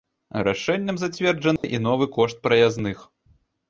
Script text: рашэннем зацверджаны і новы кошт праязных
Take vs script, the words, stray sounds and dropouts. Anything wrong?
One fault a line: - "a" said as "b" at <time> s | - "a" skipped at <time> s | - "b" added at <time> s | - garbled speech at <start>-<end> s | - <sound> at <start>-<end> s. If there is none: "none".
- dropout at 1.6-1.6 s